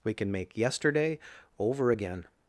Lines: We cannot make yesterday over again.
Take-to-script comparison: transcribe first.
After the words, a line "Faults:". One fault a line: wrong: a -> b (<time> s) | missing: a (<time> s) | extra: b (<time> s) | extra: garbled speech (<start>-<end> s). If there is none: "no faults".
We can make yesterday over again.
Faults:
wrong: cannot -> can (0.1 s)